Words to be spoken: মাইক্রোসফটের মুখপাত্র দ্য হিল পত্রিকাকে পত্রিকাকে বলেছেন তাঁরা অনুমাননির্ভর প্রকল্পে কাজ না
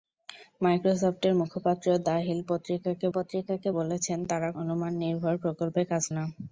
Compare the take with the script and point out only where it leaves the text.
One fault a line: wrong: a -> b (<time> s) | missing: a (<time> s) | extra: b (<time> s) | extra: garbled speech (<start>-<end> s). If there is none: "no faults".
no faults